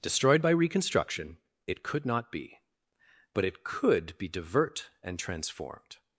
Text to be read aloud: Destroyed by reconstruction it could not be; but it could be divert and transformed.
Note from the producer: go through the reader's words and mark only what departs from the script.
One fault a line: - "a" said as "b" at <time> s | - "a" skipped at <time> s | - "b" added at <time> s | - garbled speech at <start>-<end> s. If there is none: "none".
none